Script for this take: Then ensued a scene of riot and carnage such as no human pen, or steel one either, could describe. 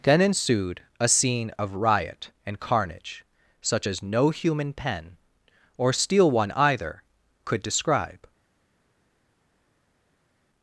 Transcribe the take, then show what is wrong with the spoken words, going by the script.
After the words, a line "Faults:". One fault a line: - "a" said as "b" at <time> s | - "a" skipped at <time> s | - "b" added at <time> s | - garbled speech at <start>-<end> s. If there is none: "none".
Then ensued a scene of riot and carnage such as no human pen, or steel one either, could describe.
Faults:
none